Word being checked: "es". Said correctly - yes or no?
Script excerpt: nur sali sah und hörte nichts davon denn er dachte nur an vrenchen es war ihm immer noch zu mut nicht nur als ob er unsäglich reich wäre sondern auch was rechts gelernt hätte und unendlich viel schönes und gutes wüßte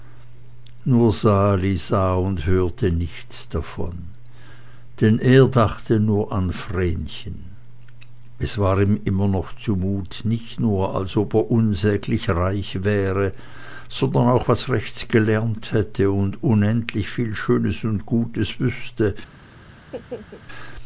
yes